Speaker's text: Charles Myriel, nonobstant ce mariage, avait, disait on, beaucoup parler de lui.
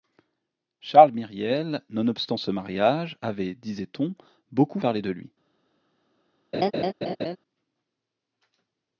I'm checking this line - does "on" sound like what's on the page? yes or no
yes